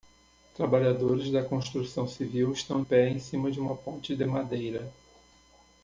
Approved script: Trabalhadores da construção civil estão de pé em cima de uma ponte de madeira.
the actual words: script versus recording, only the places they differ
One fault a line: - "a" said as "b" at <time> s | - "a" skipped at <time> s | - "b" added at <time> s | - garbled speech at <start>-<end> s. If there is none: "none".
- "de" skipped at 2.8 s